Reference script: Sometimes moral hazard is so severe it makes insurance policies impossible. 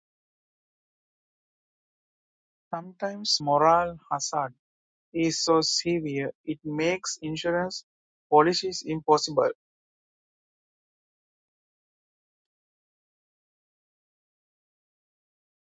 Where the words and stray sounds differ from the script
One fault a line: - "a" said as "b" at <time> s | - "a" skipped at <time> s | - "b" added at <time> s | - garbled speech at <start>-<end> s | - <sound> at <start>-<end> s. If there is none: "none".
none